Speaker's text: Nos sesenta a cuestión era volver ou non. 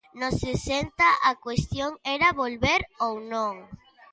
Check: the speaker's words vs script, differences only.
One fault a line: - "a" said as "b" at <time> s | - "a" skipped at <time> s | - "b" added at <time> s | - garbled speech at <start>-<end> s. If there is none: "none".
none